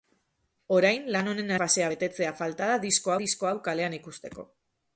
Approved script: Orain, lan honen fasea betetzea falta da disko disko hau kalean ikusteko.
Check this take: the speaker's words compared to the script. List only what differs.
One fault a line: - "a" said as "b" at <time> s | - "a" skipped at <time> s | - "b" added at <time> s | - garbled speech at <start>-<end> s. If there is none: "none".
none